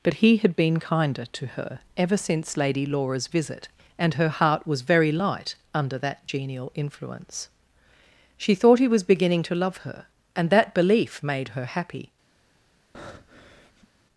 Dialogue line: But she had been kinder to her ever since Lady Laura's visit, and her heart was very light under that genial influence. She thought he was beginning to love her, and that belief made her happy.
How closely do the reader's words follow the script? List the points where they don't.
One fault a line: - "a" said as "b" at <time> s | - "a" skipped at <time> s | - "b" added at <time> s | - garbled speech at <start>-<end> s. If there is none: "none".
- "she" said as "he" at 0.1 s